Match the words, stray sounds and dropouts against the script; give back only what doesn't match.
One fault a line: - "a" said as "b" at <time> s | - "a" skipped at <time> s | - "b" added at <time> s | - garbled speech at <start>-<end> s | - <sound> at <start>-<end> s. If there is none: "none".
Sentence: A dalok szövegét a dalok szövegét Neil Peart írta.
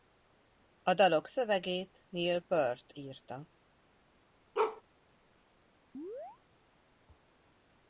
- "a dalok szövegét" skipped at 2.0 s
- bark at 4.5-4.8 s
- chirp at 5.9-6.4 s